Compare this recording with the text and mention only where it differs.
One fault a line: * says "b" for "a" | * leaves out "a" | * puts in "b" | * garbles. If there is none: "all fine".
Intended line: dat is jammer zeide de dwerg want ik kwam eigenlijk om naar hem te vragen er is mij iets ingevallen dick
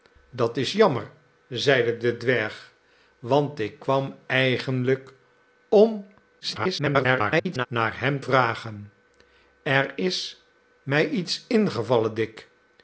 * garbles
* leaves out "te"